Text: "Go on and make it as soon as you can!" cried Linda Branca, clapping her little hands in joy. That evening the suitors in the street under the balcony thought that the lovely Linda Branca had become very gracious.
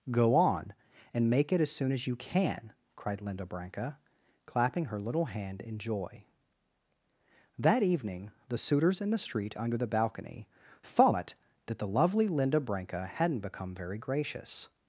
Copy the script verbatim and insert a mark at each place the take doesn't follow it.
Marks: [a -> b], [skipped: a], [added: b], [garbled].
"Go on and make it as soon as you can!" cried Linda Branca, clapping her little [hands -> hand] in joy. That evening the suitors in the street under the balcony thought that the lovely Linda Branca [had -> hadn't] become very gracious.